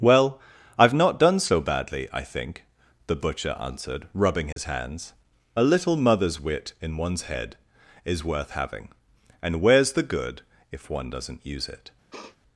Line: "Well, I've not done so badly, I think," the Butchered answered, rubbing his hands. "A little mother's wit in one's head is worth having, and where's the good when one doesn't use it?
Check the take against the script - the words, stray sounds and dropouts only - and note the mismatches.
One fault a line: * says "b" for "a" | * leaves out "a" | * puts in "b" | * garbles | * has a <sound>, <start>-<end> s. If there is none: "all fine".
* says "Butcher" for "Butchered"
* has a dropout, 4.5-4.6 s
* says "if" for "when"
* has a sniff, 12.1-12.4 s